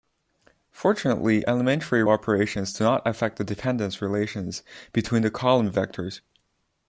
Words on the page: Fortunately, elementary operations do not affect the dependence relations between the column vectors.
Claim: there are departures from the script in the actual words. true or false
false